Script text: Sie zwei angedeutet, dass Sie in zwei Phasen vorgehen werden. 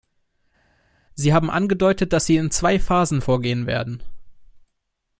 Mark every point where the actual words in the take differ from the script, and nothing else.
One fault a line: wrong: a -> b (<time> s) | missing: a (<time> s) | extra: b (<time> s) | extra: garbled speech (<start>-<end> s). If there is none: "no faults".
wrong: zwei -> haben (1.3 s)